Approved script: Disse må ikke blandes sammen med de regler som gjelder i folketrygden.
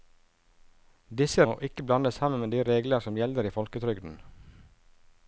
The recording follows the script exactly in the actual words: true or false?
true